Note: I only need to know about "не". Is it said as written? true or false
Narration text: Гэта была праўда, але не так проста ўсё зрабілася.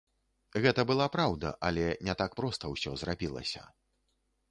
true